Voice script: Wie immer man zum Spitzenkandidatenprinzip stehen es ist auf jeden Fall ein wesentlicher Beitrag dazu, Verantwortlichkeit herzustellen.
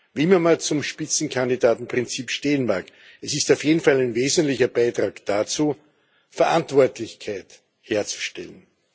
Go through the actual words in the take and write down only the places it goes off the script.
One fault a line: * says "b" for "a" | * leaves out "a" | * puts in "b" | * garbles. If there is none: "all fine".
* puts in "mag"